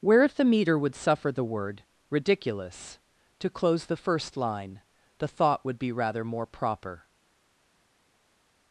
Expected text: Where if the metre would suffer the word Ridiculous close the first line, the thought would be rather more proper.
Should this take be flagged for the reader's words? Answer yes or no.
yes